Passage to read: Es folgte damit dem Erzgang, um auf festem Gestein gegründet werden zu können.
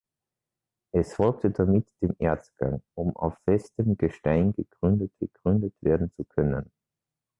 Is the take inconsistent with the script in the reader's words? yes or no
yes